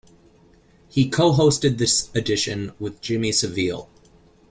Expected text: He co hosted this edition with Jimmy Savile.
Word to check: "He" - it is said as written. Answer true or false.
true